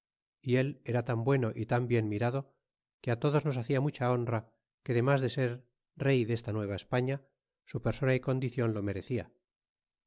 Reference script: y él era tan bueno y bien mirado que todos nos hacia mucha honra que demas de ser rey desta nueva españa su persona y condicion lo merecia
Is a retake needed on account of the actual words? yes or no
yes